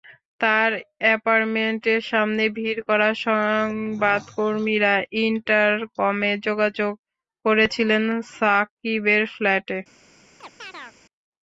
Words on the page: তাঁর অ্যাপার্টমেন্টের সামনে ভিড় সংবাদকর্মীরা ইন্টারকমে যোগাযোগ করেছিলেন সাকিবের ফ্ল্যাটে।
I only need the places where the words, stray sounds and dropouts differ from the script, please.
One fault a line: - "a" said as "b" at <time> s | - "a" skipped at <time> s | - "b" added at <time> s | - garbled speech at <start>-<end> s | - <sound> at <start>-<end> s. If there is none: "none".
- "করা" added at 2.9 s
- chirp at 10.4-11.0 s